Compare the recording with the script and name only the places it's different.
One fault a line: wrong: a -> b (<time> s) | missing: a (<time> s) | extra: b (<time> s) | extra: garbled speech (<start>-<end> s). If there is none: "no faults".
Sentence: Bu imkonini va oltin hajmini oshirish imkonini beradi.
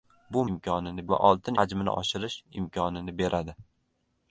no faults